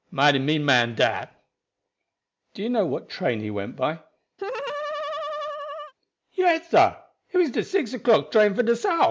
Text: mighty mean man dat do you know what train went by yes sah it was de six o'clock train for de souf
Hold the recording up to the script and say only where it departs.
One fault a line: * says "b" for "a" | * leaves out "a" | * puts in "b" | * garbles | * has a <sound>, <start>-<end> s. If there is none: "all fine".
* puts in "he"
* has a laugh, 4.4-5.9 s